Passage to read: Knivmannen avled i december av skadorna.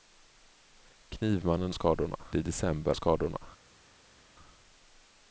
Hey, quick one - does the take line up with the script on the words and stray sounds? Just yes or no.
no